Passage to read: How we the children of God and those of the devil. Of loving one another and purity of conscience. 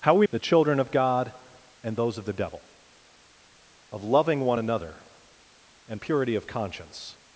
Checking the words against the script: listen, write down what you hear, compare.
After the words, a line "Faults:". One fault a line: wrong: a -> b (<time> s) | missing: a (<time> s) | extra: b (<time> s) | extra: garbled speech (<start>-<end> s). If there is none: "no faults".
How we the children of God and those of the devil. Of loving one another and purity of conscience.
Faults:
no faults